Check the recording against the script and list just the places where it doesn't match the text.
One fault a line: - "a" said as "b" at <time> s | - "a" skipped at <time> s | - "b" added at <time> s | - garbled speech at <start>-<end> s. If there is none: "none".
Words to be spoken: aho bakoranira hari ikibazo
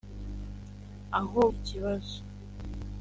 - "bakoranira hari" skipped at 1.4 s